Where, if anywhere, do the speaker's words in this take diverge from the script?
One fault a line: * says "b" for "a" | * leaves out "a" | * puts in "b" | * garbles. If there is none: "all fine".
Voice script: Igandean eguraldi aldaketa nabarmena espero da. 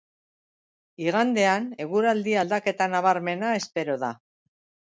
all fine